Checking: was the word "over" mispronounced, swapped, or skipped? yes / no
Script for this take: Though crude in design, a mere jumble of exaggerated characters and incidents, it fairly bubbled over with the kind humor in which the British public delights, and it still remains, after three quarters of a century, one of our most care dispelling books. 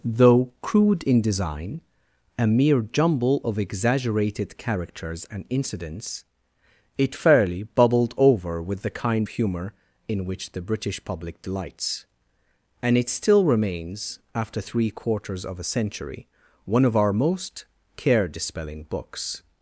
no